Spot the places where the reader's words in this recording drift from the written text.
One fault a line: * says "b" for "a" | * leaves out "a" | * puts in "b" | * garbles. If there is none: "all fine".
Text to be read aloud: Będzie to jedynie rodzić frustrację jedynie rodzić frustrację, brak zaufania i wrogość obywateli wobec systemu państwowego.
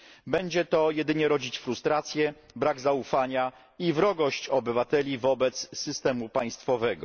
* leaves out "jedynie rodzić frustrację"